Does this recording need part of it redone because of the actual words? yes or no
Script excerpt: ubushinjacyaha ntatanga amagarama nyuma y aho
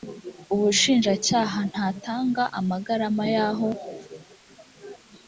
yes